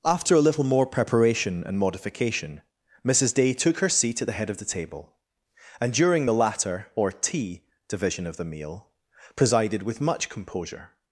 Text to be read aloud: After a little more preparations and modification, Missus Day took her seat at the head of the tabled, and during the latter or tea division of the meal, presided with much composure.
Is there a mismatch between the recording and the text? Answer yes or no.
yes